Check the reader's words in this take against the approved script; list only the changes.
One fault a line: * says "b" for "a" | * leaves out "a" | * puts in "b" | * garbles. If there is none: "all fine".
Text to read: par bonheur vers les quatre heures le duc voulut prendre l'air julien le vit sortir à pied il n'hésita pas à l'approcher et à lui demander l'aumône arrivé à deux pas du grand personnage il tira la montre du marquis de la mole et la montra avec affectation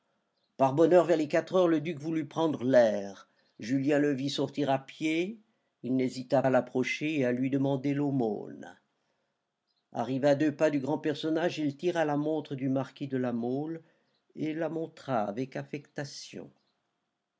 * leaves out "pas"